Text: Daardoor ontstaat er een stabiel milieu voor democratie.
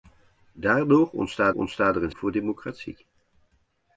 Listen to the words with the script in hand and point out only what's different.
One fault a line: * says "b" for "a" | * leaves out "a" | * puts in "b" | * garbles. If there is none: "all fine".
* puts in "ontstaat"
* leaves out "stabiel milieu"